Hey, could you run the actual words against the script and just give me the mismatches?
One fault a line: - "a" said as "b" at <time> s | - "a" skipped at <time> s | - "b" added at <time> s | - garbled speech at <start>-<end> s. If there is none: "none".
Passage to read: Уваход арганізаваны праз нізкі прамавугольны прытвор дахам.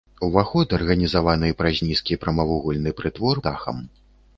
none